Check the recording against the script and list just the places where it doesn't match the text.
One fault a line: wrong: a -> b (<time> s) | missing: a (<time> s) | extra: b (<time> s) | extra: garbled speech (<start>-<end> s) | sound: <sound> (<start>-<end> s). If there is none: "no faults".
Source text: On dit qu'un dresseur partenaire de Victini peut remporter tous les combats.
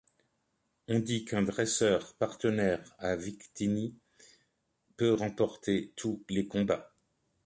wrong: de -> à (3.0 s)